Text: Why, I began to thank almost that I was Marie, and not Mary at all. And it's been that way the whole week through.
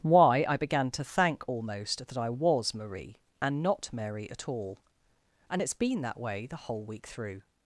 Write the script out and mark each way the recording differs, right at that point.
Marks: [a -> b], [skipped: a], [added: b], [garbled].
Why, I began to thank almost that I was Marie, and not Mary at all. And it's been that way the whole week through.